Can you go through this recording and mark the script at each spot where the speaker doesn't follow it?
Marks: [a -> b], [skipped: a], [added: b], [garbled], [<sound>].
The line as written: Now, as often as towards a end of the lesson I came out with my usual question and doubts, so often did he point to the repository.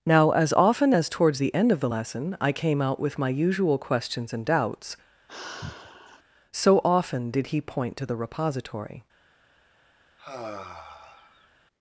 Now, as often as towards [a -> the] end of the lesson I came out with my usual [question -> questions] and doubts, [sigh] so often did he point to the repository. [sigh]